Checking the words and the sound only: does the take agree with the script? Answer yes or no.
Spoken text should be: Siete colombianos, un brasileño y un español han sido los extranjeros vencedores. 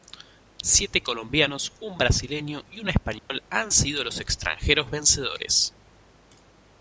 no